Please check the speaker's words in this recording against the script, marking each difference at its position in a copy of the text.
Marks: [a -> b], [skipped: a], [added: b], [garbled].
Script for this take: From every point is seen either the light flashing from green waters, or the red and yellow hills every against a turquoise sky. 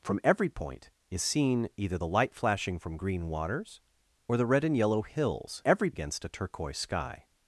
From every point is seen either the light flashing from green waters, or the red and yellow hills every against a turquoise sky.